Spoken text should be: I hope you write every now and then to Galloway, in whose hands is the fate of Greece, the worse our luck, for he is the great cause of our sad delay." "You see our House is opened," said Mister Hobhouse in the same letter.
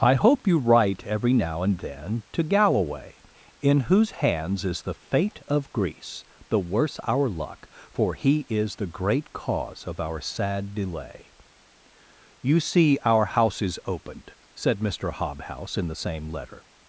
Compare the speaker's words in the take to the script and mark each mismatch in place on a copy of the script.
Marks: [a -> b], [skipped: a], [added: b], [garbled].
I hope you write every now and then to Galloway, in whose hands is the fate of Greece, the worse our luck, for he is the great cause of our sad delay." "You see our House is opened," said Mister Hobhouse in the same letter.